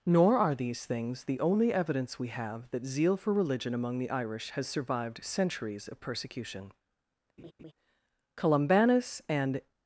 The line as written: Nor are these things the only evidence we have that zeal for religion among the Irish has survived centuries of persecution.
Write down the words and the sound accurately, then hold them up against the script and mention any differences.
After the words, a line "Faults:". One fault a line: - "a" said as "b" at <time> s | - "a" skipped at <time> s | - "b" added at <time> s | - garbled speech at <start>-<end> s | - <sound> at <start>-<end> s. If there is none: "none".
Nor are these things the only evidence we have that zeal for religion among the Irish has survived centuries of persecution. Columbanus and
Faults:
- laugh at 7.4-7.7 s
- "Columbanus and" added at 8.4 s